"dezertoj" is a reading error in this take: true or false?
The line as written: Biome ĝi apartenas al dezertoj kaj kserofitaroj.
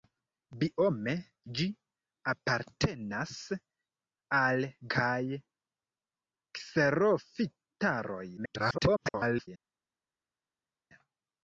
true